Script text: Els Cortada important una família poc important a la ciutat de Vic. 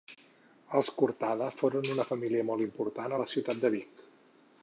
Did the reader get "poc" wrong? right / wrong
wrong